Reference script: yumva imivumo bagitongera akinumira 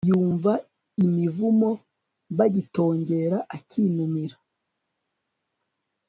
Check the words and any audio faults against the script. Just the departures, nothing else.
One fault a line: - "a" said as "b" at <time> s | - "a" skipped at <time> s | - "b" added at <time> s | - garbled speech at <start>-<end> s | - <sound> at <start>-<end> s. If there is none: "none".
none